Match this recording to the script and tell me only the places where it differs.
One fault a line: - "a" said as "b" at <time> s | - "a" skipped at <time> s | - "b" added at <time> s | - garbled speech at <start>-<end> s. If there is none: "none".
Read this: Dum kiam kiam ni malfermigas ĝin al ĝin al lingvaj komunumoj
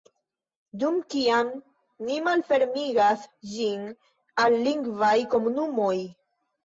- "kiam" skipped at 1.5 s
- "ĝin al" skipped at 4.6 s